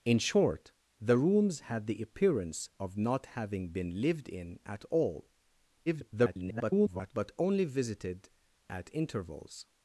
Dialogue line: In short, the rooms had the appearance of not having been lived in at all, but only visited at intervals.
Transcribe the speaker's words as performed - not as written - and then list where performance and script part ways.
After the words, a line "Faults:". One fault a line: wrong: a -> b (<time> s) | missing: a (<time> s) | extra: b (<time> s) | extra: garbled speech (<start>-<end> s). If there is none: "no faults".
In short, the rooms had the appearance of not having been lived in at all, [garbled] but only visited at intervals.
Faults:
extra: garbled speech (5.9-7.1 s)